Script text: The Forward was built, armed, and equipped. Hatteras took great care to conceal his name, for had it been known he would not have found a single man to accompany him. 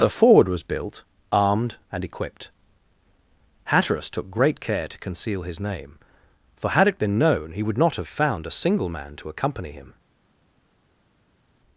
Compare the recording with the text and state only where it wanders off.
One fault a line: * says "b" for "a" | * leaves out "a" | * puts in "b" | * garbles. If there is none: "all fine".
all fine